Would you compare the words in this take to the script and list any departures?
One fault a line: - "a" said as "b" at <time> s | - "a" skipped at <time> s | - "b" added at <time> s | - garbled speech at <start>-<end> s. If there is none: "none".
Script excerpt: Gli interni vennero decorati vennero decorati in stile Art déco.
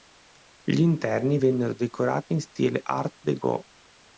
- "vennero decorati" skipped at 2.3 s